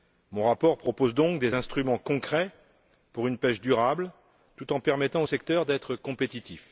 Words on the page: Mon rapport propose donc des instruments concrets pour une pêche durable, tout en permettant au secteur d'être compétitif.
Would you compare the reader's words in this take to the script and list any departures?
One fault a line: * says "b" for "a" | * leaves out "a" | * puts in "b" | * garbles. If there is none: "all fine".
all fine